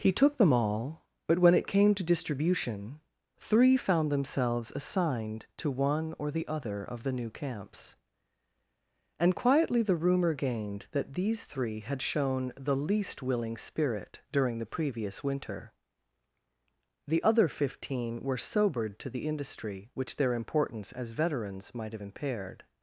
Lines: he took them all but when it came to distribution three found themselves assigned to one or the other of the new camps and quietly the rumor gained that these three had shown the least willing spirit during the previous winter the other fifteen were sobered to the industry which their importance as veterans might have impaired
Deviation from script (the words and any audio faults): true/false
false